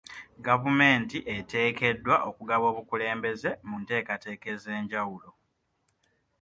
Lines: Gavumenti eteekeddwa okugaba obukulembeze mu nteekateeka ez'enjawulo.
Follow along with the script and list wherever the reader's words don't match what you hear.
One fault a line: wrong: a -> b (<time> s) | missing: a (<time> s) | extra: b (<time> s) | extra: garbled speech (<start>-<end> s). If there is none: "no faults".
no faults